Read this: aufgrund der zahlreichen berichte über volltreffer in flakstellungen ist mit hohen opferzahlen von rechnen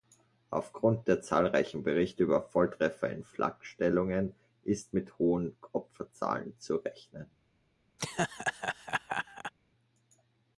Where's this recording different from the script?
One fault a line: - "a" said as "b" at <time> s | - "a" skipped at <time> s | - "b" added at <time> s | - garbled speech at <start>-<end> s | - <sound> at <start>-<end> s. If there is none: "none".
- "von" said as "zu" at 6.6 s
- laugh at 8.0-9.5 s